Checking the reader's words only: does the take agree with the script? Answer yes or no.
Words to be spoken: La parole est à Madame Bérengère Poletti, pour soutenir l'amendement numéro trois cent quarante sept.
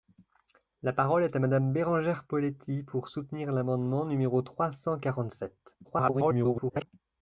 no